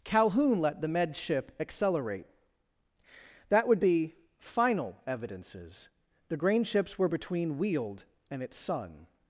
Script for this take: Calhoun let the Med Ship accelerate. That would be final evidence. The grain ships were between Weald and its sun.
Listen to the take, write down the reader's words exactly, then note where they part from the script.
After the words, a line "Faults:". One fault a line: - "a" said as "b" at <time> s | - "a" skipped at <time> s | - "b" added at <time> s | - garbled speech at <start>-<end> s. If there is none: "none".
Calhoun let the Med Ship accelerate. That would be final evidences. The grain ships were between Weald and its sun.
Faults:
- "evidence" said as "evidences" at 5.1 s